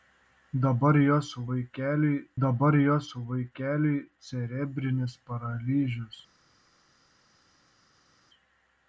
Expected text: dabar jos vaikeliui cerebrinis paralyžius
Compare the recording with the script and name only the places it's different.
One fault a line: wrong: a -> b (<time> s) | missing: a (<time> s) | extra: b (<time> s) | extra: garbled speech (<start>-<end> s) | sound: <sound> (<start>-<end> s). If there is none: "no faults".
extra: dabar jos vaikeliui (2.4 s)